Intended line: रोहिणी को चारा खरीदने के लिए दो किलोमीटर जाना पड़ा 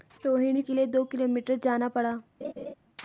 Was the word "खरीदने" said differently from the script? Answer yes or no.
yes